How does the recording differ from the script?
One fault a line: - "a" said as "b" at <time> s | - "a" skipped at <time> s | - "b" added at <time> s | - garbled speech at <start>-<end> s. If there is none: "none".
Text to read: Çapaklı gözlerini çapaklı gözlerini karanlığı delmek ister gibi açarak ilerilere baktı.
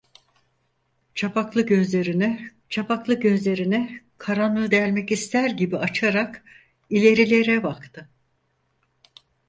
none